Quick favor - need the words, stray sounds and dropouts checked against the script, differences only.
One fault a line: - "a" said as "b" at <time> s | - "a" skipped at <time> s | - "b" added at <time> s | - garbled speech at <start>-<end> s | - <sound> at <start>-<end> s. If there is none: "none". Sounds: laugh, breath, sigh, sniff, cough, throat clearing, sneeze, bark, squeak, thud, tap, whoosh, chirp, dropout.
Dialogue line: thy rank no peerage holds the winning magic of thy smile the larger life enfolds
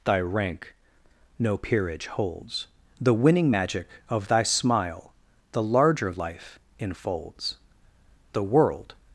- "the world" added at 8.3 s